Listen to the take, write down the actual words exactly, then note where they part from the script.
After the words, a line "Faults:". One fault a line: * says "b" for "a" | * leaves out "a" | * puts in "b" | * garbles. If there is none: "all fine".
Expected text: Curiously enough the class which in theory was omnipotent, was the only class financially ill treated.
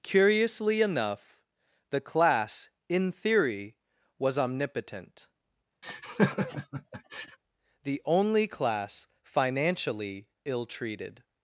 Curiously enough the class in theory was omnipotent, the only class financially ill treated.
Faults:
* leaves out "which"
* leaves out "was"